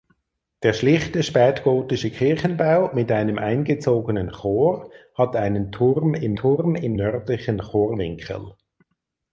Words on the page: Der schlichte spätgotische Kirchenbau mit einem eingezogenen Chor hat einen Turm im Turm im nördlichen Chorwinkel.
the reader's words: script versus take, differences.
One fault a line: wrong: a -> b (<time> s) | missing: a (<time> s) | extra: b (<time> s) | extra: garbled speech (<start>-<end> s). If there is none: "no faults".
no faults